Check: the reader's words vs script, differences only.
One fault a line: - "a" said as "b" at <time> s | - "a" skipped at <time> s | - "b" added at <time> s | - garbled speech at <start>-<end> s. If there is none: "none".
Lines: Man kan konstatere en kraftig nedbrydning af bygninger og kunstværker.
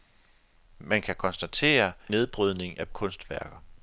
- "en kraftig" skipped at 1.9 s
- "bygninger og" skipped at 2.9 s